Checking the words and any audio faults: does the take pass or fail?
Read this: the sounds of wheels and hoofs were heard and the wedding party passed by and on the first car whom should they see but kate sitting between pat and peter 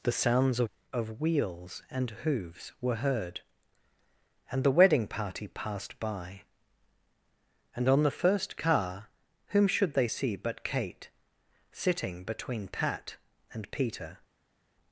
fail